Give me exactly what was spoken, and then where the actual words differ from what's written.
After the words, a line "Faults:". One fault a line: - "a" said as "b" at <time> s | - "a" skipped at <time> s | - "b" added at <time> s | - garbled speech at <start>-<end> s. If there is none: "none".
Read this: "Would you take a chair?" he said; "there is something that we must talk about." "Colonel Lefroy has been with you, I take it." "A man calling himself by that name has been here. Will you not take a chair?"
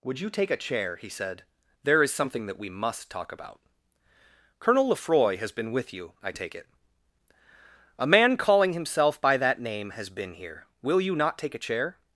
"Would you take a chair?" he said; "there is something that we must talk about." "Colonel Lefroy has been with you, I take it." "A man calling himself by that name has been here. Will you not take a chair?"
Faults:
none